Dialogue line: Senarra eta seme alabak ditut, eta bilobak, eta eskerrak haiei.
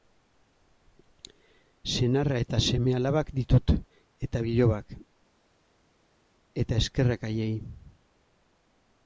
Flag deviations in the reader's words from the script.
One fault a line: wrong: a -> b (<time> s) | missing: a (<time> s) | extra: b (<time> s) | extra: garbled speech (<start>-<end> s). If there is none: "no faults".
no faults